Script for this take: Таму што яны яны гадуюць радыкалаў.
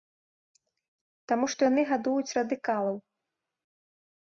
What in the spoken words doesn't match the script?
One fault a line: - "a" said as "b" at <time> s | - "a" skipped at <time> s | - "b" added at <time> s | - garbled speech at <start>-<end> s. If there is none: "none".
- "яны" skipped at 1.8 s